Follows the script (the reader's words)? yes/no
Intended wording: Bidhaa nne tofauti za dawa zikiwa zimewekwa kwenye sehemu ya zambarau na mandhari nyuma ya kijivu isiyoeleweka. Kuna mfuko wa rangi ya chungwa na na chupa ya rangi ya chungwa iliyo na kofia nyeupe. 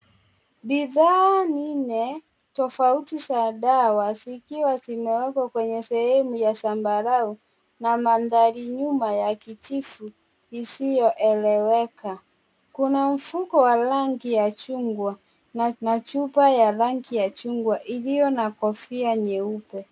yes